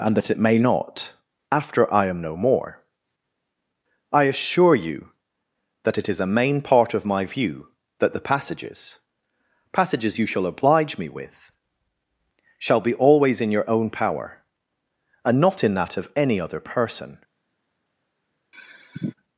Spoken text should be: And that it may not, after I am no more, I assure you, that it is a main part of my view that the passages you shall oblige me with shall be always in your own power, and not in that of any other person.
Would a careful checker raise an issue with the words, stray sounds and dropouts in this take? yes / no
yes